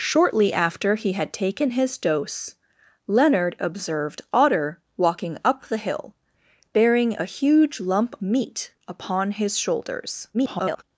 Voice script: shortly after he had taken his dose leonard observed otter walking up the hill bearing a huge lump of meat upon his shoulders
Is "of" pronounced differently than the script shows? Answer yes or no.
yes